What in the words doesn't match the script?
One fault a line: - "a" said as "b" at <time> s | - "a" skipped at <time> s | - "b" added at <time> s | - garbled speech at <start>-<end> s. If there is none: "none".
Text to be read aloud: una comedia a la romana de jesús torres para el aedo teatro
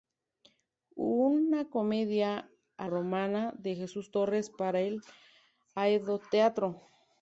- "la" skipped at 2.9 s